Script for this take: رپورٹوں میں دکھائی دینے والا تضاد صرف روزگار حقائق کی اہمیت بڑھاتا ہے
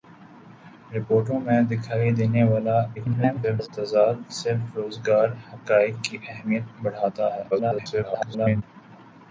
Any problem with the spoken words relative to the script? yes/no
yes